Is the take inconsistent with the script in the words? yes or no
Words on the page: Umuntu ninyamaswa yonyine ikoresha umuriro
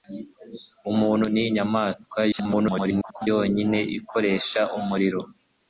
yes